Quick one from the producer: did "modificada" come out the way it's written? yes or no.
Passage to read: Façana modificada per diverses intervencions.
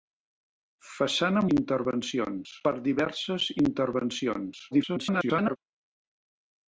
no